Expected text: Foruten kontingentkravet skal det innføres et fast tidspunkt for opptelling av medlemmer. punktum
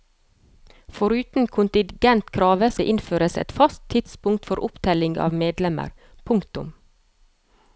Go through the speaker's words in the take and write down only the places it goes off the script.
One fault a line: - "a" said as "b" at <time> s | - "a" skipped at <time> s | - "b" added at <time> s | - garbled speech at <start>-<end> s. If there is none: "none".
- "skal" skipped at 2.7 s